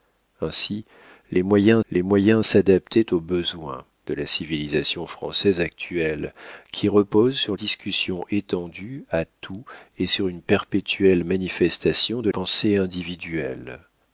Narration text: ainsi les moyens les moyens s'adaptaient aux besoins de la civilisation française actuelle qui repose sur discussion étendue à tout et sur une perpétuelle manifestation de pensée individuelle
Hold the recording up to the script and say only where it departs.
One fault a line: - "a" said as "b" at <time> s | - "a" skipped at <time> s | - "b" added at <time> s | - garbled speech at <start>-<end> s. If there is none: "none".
none